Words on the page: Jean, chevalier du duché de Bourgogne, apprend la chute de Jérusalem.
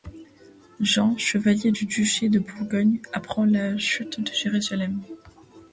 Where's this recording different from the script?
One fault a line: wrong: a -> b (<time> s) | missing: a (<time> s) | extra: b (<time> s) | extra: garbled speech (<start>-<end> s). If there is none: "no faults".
no faults